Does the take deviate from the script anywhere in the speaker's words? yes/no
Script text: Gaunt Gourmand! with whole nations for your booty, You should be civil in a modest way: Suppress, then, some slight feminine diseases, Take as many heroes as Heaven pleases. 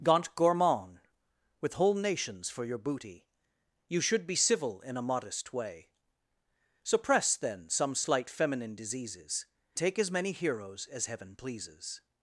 no